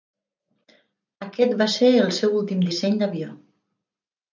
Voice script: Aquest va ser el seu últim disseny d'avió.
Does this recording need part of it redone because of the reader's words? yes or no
no